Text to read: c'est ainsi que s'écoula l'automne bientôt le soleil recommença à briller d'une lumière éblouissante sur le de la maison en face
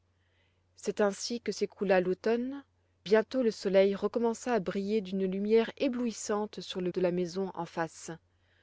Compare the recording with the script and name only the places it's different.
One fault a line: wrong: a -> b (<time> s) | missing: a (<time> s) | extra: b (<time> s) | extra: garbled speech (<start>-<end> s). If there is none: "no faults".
no faults